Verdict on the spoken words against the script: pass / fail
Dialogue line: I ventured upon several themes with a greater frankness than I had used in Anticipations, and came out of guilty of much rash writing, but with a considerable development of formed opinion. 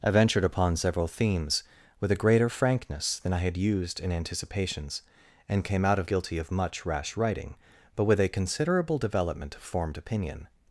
pass